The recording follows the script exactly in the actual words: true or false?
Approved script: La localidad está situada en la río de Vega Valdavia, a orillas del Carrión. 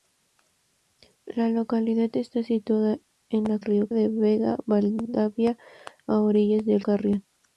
true